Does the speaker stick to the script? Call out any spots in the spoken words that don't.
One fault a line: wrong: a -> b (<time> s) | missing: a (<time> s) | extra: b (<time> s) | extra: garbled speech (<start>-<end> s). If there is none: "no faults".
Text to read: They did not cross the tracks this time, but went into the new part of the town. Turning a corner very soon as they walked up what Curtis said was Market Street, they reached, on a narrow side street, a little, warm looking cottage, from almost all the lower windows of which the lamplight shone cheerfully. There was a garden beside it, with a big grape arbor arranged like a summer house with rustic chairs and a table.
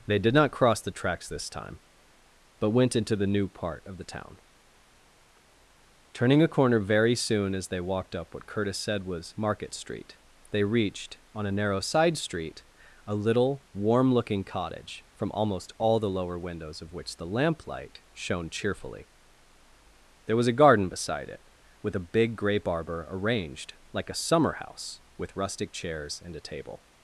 no faults